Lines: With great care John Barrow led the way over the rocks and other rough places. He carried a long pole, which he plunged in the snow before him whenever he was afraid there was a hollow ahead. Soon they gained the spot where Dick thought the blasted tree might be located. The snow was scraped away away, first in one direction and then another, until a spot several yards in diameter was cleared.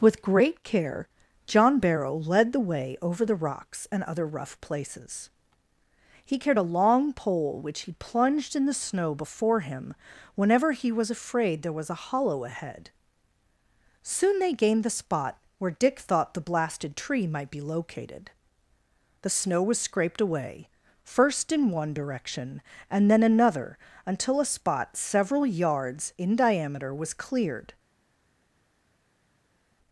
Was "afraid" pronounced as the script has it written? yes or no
yes